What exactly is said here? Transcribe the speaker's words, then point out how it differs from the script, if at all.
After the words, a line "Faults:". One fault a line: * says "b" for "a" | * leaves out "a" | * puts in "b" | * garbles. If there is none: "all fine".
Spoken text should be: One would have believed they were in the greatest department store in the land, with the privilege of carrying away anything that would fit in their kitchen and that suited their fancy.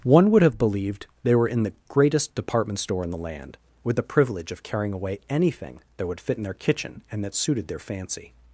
One would have believed they were in the greatest department store in the land, with the privilege of carrying away anything that would fit in their kitchen and that suited their fancy.
Faults:
all fine